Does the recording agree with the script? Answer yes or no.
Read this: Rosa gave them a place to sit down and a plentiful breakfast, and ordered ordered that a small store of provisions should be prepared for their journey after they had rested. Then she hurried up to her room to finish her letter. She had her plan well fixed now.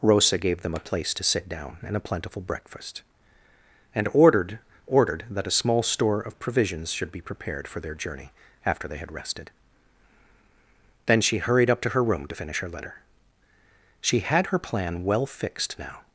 yes